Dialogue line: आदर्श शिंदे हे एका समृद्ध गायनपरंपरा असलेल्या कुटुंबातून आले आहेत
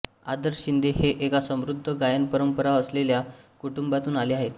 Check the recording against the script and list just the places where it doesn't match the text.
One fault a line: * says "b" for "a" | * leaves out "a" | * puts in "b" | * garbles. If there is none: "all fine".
all fine